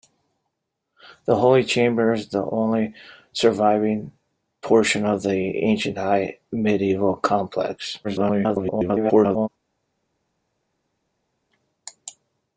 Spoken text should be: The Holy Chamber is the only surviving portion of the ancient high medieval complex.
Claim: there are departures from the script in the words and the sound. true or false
true